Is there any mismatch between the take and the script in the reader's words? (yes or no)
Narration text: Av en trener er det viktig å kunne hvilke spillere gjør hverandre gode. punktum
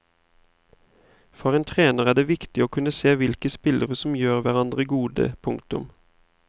yes